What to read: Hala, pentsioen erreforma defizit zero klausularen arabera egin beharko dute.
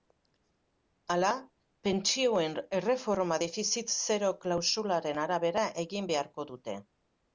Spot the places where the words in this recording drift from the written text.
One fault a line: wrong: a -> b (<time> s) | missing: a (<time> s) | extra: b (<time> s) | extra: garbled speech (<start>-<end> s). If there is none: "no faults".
no faults